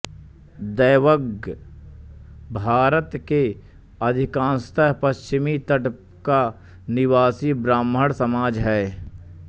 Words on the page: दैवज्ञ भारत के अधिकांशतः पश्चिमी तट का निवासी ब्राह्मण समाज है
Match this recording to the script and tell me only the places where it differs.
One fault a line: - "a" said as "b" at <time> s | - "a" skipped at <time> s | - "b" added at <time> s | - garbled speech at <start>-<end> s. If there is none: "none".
none